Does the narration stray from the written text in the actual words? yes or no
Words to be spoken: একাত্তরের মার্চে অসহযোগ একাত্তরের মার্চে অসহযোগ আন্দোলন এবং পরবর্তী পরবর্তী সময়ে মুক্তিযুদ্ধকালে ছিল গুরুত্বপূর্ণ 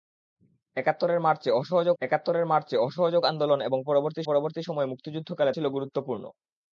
no